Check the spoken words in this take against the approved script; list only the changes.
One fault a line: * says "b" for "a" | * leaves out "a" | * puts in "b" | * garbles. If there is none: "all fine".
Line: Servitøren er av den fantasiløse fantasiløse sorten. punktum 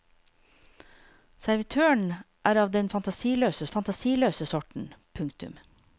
all fine